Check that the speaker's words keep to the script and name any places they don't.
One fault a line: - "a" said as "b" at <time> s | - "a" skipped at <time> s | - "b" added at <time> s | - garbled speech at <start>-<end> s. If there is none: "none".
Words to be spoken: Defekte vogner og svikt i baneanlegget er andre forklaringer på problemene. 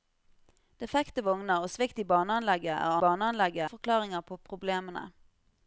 - "andre" said as "baneanlegget" at 3.0 s